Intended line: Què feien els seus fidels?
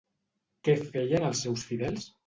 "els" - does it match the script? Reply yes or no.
yes